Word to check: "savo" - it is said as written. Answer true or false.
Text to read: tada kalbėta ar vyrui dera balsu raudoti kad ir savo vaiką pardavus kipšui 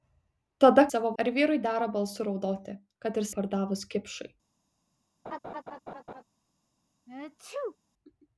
false